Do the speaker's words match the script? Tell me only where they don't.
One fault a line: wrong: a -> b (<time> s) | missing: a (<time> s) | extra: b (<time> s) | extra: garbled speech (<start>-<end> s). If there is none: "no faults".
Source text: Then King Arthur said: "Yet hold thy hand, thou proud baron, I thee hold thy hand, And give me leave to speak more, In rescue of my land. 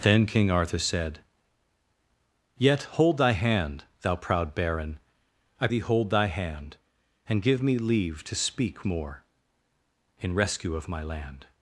no faults